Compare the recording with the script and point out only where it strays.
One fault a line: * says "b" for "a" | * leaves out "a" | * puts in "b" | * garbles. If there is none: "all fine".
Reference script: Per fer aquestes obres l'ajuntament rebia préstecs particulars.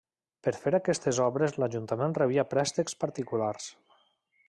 all fine